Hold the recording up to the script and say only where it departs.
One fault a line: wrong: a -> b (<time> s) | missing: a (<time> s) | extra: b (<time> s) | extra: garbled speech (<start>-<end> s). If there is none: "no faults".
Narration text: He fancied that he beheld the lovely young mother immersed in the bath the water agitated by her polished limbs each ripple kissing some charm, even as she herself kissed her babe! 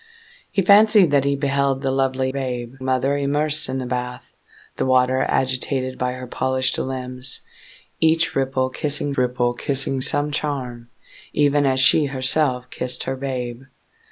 wrong: young -> babe (2.3 s)
extra: ripple kissing (9.2 s)